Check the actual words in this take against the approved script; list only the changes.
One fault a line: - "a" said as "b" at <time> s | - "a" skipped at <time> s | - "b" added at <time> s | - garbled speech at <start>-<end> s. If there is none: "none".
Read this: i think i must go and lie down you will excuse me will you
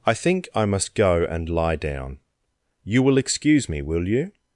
none